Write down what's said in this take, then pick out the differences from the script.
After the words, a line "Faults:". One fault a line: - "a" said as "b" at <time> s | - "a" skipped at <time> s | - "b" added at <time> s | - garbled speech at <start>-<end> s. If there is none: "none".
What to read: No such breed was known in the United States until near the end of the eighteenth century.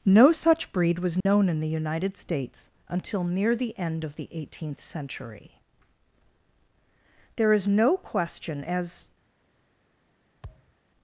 No such breed was known in the United States until near the end of the eighteenth century. There is no question as
Faults:
- "There is no question as" added at 7.4 s